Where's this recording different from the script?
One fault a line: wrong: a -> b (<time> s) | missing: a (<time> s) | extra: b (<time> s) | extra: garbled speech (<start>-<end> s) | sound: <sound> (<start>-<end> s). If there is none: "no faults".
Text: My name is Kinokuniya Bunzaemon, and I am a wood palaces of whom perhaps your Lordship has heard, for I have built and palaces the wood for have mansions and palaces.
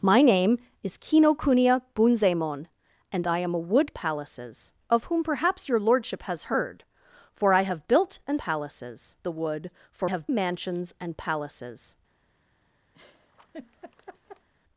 sound: laugh (12.9-14.5 s)